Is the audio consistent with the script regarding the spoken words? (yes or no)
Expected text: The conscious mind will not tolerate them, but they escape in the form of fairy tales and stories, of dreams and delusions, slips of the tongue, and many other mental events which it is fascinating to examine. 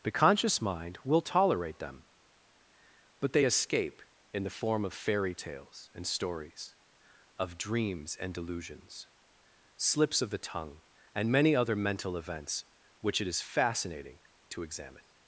no